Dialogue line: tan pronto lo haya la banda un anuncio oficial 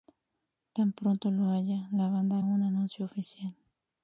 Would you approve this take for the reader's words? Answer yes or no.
yes